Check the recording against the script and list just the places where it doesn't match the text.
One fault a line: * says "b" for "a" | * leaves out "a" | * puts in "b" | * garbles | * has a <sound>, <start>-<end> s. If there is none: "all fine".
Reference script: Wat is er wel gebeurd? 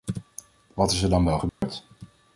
* puts in "dan"
* has a dropout, 1.5-1.6 s